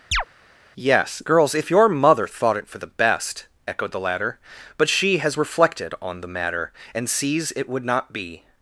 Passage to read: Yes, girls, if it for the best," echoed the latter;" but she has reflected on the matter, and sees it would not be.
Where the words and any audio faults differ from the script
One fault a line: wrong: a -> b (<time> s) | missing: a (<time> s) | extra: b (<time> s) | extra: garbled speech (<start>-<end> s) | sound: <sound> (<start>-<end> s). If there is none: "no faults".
sound: chirp (0.1-0.2 s)
extra: your mother thought (1.7 s)